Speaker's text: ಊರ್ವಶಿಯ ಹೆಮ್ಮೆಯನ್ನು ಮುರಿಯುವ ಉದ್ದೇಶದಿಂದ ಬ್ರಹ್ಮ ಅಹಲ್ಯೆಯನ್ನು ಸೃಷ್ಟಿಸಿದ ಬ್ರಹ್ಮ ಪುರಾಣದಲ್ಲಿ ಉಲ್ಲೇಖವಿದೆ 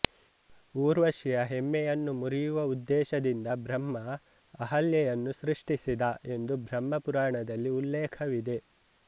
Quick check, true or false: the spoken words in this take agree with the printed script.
false